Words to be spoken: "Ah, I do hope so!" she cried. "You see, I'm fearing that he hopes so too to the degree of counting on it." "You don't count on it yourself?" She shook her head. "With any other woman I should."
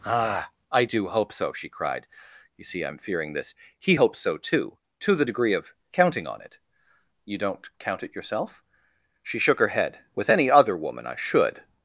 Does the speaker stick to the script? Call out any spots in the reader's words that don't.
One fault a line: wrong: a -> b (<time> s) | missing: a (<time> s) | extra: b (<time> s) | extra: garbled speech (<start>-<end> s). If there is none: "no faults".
wrong: that -> this (3.3 s)
missing: on (8.0 s)